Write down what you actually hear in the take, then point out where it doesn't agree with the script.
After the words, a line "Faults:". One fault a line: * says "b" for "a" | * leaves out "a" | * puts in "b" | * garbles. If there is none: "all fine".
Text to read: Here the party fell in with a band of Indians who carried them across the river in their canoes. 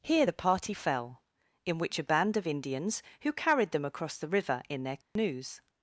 Here the party fell in which a band of Indians who carried them across the river in their canoes.
Faults:
* says "which" for "with"